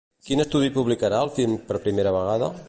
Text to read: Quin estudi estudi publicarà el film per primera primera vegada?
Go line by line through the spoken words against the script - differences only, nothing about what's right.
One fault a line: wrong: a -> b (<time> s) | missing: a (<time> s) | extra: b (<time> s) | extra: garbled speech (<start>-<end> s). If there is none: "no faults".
missing: estudi (0.7 s)
missing: primera (2.1 s)